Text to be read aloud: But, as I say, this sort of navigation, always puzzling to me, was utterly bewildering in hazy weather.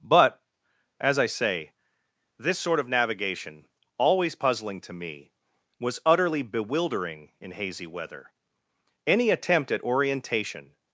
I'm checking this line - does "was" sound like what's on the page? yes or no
yes